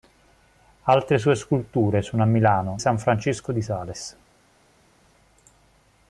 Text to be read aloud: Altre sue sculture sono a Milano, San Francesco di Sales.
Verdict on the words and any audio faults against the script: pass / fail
pass